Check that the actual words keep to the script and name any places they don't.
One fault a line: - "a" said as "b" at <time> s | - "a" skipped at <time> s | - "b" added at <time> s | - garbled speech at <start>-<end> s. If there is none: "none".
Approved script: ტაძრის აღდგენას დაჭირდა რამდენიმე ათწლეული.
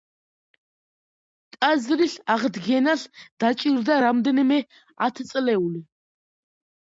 none